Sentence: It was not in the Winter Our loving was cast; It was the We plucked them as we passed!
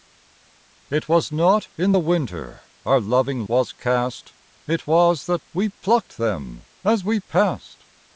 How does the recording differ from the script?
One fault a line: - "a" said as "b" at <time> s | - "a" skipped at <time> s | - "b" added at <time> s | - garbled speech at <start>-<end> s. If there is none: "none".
none